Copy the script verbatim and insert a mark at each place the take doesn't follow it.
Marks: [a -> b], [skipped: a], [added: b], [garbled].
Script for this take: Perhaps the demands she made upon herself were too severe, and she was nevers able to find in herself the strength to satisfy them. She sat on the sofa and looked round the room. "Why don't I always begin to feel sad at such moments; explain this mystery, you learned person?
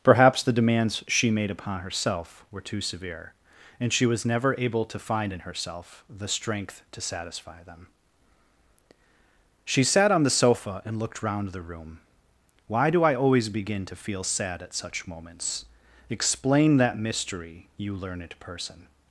Perhaps the demands she made upon herself were too severe, and she was [nevers -> never] able to find in herself the strength to satisfy them. She sat on the sofa and looked round the room. "Why [don't -> do] I always begin to feel sad at such moments; explain [this -> that] mystery, you learned person?